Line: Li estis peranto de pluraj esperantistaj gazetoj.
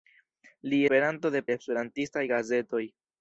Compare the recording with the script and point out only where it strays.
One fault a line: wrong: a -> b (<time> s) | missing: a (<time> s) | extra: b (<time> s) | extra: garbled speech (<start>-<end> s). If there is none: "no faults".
missing: estis (0.8 s)
missing: pluraj (1.4 s)